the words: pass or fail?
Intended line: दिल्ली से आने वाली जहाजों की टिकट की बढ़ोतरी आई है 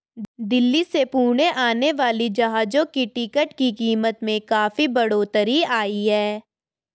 fail